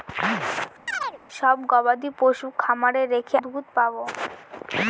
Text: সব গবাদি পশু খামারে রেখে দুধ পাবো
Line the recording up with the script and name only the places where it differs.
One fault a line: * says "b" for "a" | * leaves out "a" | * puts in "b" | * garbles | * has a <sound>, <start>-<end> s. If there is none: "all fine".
* has a chirp, 0.9-1.2 s